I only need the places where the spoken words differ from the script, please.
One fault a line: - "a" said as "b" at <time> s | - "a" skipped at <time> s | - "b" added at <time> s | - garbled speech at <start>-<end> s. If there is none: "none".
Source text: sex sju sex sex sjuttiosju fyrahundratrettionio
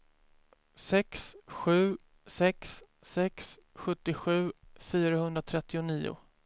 none